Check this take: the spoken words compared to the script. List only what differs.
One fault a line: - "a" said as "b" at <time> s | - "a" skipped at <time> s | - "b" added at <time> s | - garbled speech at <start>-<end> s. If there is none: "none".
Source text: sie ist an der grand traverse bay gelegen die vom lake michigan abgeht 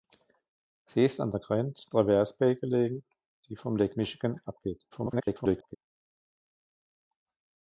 - garbled speech at 4.9-5.8 s